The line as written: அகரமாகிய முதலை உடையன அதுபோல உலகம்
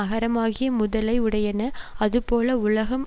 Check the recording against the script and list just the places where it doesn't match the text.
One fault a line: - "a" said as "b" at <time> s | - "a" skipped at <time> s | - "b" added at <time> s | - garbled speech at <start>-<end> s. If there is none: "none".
none